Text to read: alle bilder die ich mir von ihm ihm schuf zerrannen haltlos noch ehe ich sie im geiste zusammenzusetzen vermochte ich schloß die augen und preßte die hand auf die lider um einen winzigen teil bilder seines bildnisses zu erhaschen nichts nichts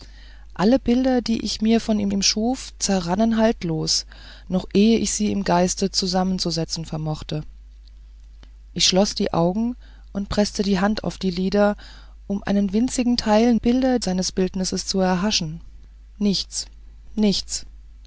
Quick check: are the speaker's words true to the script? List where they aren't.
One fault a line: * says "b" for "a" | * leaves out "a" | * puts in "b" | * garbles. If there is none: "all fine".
all fine